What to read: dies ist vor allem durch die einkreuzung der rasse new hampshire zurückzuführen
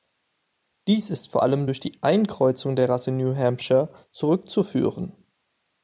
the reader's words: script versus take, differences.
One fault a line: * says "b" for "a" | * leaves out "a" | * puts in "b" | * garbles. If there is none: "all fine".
all fine